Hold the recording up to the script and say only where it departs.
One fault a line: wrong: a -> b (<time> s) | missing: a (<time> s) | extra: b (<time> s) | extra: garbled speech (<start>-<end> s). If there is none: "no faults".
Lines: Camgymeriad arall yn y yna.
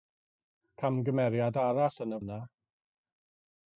no faults